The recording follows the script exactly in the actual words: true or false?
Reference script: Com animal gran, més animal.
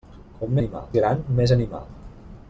true